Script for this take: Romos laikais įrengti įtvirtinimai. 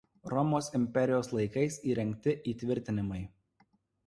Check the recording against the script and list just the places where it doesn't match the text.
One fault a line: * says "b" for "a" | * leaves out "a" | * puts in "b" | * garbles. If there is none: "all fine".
* puts in "imperijos"